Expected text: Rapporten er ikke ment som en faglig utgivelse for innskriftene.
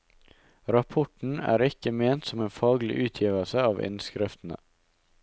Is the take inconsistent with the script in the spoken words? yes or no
yes